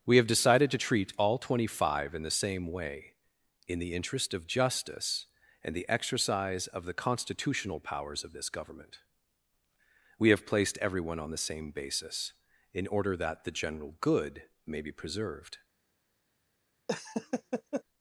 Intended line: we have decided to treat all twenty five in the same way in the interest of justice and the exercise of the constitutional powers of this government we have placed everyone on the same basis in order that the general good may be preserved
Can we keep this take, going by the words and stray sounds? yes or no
no